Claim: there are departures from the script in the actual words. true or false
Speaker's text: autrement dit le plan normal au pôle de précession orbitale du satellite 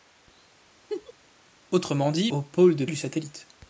true